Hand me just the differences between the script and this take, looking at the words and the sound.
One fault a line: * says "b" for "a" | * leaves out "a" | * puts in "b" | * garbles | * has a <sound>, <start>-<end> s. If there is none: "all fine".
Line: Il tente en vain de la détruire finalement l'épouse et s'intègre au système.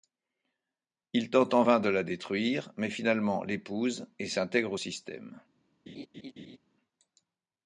* puts in "mais"
* has a laugh, 5.9-6.6 s